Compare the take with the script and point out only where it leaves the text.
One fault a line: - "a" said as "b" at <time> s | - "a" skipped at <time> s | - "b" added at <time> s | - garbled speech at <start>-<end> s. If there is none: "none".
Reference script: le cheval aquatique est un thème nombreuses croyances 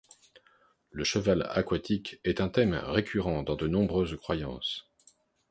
- "récurrent dans de" added at 2.7 s